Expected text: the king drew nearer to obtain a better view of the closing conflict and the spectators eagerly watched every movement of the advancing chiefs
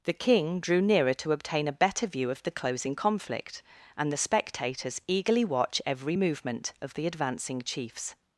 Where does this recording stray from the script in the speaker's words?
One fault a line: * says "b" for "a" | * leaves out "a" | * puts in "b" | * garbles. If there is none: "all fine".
* says "watch" for "watched"